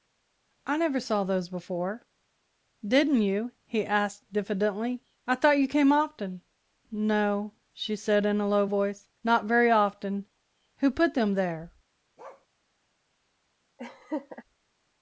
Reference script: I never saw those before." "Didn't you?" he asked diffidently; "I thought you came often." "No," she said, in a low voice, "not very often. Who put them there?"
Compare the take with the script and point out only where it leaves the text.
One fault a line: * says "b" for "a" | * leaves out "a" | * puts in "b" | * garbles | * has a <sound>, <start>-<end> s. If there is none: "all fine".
* has a bark, 12.2-12.5 s
* has a laugh, 13.8-14.4 s